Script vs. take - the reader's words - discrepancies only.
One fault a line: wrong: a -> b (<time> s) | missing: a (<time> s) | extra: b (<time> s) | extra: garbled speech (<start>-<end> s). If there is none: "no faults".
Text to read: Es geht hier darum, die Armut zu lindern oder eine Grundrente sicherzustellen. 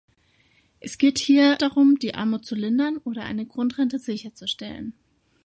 no faults